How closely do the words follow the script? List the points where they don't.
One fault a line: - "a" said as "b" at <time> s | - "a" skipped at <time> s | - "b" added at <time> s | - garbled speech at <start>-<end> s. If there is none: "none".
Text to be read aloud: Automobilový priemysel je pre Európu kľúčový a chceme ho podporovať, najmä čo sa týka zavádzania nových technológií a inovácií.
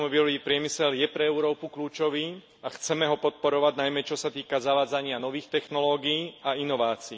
none